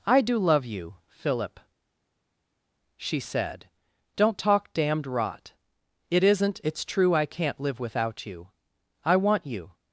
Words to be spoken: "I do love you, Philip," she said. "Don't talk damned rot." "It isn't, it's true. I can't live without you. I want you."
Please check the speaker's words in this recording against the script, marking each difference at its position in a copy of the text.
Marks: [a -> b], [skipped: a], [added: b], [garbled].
"I do love you, Philip," she said. "Don't talk damned rot." "It isn't, it's true. I can't live without you. I want you."